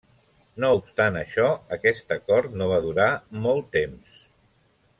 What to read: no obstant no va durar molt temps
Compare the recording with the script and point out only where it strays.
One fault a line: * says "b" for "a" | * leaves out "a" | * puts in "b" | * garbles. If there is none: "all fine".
* puts in "això aquest acord"